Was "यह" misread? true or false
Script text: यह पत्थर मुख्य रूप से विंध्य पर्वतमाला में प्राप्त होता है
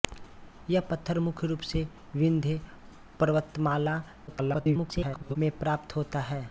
false